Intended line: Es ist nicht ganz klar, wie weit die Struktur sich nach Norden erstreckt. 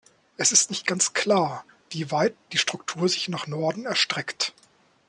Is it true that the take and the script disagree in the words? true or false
false